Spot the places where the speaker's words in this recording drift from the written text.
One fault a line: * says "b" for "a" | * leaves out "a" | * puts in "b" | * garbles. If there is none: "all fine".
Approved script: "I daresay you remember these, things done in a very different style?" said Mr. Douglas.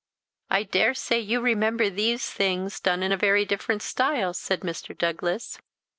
all fine